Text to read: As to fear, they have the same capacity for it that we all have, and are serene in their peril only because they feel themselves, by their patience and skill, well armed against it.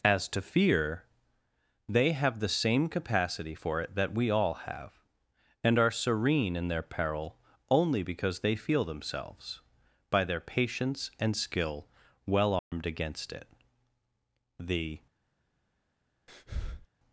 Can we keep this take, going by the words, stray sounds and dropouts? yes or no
no